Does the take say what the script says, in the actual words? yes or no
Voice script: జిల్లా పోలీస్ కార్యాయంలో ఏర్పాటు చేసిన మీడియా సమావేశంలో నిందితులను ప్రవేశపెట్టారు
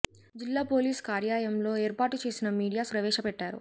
no